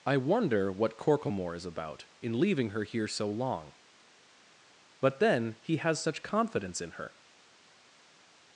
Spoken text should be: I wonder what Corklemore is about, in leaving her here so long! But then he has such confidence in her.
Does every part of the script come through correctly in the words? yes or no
yes